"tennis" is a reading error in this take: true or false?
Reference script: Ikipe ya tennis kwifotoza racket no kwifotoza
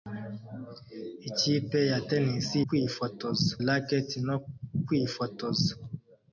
false